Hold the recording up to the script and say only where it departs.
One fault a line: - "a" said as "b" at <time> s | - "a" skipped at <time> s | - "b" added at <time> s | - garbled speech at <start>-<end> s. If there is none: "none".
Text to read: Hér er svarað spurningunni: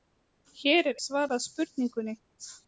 none